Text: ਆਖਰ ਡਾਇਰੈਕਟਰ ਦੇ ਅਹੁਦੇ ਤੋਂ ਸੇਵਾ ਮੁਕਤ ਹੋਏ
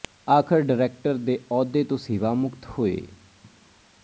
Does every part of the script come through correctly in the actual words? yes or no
yes